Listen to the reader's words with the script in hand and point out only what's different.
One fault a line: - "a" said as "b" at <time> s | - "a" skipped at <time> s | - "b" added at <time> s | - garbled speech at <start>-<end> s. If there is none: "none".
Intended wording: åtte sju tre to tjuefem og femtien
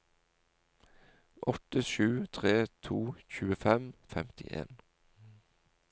none